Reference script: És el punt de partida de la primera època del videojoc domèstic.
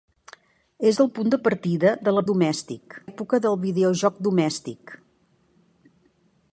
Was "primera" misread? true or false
true